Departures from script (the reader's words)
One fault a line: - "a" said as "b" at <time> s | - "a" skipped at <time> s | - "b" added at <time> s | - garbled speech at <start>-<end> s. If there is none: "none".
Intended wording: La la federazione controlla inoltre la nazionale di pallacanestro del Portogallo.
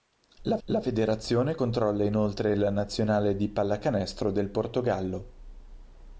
none